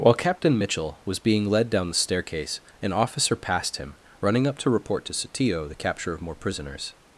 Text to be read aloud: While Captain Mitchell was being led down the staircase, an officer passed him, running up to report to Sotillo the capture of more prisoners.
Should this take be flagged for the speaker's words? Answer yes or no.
no